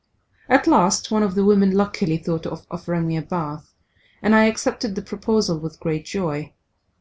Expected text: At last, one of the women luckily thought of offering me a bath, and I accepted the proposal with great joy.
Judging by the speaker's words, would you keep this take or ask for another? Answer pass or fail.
pass